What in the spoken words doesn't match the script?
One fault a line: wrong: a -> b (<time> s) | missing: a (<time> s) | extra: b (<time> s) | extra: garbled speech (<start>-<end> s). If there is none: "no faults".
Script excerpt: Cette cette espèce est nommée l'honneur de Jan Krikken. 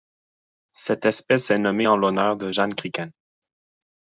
missing: cette (1.1 s)
extra: en (1.8 s)